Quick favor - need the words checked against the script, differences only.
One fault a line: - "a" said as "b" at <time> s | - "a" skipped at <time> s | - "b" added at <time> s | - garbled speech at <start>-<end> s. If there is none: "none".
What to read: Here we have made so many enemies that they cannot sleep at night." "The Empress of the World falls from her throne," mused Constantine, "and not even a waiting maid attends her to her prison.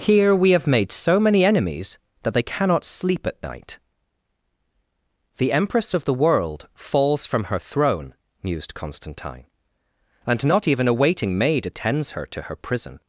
none